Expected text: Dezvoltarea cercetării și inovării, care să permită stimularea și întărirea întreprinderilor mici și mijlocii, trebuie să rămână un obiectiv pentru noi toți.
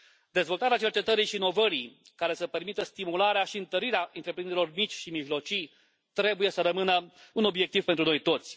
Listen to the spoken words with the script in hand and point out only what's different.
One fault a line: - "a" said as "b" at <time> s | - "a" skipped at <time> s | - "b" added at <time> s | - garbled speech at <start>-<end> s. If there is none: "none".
none